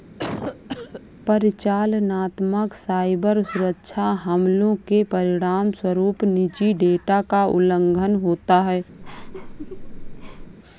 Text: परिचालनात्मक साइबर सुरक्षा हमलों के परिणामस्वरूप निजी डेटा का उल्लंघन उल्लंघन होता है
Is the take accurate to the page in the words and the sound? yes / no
no